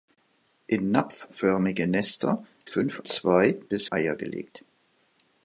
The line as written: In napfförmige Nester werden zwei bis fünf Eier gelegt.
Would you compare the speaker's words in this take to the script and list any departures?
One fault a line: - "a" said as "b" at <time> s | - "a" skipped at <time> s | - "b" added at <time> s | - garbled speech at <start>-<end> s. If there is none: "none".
- "werden" said as "fünf" at 2.7 s
- "fünf" skipped at 3.9 s